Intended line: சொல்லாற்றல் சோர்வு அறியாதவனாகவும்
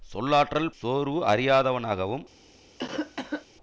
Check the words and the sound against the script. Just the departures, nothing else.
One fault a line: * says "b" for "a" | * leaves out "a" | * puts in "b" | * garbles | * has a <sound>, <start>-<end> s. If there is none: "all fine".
* has a cough, 2.8-3.5 s